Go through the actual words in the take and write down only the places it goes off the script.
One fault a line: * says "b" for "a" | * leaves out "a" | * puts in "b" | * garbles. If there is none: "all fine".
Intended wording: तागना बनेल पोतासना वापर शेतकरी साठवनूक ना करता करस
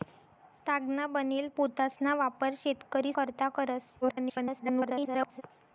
* leaves out "साठवनूक ना"
* garbles